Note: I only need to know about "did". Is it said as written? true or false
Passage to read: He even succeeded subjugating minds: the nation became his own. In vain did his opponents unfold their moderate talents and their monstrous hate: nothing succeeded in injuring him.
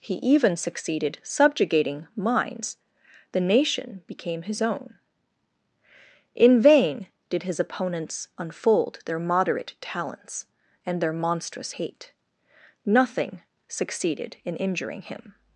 true